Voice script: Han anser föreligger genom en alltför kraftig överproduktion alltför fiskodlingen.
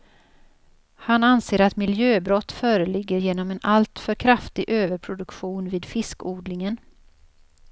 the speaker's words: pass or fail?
fail